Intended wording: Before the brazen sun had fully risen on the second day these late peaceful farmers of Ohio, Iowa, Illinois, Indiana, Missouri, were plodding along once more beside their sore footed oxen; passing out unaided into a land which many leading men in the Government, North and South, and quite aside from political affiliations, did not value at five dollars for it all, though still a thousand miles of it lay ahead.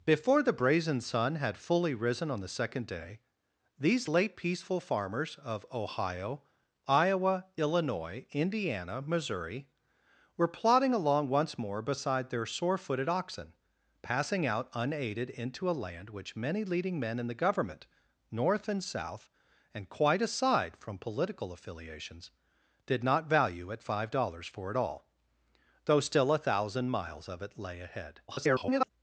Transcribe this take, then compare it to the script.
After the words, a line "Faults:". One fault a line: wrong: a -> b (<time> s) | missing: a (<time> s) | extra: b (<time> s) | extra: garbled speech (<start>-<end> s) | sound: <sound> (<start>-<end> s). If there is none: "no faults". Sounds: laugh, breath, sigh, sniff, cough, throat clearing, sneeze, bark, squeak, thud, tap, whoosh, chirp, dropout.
Before the brazen sun had fully risen on the second day these late peaceful farmers of Ohio, Iowa, Illinois, Indiana, Missouri, were plodding along once more beside their sore footed oxen; passing out unaided into a land which many leading men in the Government, North and South, and quite aside from political affiliations, did not value at five dollars for it all, though still a thousand miles of it lay ahead. [garbled]
Faults:
extra: garbled speech (28.3-28.9 s)